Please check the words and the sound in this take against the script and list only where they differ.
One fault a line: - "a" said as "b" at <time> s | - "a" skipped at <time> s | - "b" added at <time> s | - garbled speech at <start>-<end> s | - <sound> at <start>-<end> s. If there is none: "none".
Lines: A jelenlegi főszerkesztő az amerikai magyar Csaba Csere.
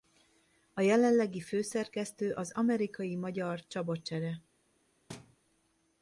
- thud at 5.1-5.4 s